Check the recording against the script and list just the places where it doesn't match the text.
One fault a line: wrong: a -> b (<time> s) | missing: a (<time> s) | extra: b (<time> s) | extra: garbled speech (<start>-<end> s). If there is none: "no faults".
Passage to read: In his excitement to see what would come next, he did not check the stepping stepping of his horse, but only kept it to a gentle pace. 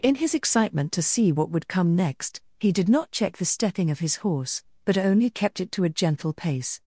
missing: stepping (3.9 s)